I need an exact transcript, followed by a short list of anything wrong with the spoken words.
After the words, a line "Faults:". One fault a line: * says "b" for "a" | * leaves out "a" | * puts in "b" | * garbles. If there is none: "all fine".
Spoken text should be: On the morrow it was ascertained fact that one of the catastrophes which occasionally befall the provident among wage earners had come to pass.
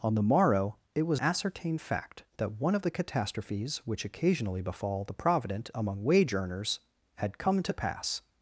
On the morrow it was ascertained fact that one of the catastrophes which occasionally befall the provident among wage earners had come to pass.
Faults:
all fine